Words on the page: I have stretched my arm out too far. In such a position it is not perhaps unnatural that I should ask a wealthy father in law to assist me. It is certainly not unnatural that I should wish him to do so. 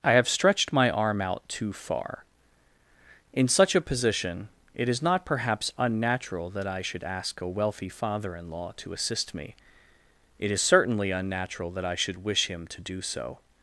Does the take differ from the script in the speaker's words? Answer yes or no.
yes